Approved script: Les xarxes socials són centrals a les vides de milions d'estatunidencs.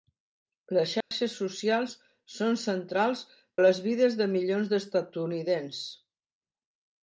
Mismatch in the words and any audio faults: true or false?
true